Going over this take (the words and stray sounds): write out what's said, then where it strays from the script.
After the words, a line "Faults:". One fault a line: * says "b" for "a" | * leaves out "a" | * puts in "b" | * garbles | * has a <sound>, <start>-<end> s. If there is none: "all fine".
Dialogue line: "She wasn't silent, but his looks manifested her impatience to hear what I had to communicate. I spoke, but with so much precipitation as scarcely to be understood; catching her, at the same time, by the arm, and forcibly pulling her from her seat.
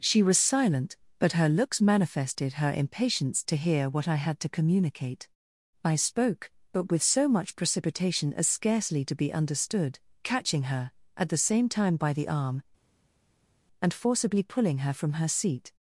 "She was silent, but her looks manifested her impatience to hear what I had to communicate. I spoke, but with so much precipitation as scarcely to be understood; catching her, at the same time, by the arm, and forcibly pulling her from her seat.
Faults:
* says "was" for "wasn't"
* says "her" for "his"